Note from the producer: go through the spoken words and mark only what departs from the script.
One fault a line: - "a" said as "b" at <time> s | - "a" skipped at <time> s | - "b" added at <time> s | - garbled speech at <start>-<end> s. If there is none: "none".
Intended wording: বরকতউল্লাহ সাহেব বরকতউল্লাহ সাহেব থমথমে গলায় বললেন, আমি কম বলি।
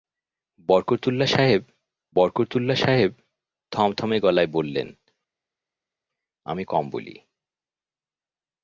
none